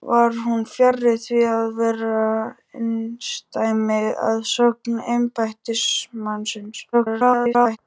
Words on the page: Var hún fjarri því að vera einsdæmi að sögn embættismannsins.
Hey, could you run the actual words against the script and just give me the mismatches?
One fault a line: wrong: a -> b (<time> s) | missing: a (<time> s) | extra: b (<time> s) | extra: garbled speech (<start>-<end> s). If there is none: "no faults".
extra: garbled speech (6.9-7.8 s)